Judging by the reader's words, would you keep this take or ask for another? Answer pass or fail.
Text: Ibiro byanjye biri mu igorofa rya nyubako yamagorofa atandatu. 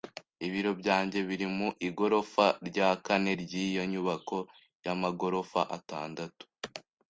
fail